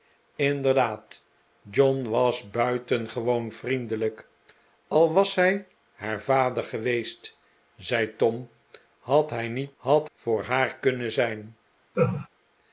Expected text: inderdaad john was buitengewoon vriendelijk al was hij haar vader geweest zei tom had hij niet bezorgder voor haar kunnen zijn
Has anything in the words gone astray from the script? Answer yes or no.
yes